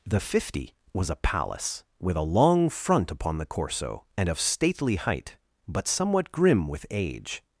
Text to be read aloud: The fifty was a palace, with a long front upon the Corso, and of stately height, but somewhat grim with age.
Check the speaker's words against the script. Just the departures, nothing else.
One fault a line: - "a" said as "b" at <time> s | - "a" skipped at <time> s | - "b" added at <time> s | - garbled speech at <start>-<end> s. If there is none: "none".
none